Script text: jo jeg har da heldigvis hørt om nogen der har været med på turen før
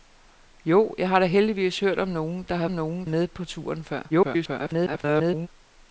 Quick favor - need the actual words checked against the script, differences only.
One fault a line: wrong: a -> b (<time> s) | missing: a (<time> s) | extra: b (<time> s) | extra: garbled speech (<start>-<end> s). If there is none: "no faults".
wrong: været -> nogen (2.7 s)
extra: garbled speech (4.1-5.5 s)